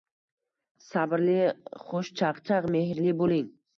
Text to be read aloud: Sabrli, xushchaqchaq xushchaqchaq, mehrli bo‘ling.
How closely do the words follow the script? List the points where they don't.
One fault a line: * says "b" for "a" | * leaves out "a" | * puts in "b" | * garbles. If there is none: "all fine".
* leaves out "xushchaqchaq"